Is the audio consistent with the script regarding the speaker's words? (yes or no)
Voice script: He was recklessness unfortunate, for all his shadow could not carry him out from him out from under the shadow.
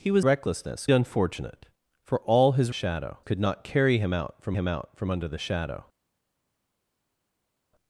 yes